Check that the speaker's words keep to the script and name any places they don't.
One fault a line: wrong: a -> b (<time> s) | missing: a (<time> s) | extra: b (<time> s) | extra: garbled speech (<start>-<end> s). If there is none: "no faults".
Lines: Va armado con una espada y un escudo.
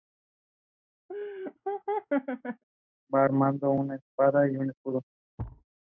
no faults